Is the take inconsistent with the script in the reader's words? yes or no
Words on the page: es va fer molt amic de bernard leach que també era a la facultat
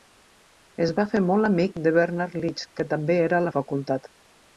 no